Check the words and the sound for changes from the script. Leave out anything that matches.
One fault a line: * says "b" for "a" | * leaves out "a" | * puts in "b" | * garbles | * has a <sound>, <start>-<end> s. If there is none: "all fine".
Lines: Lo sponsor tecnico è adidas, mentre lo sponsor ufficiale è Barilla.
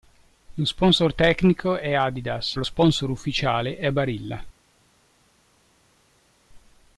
* leaves out "mentre"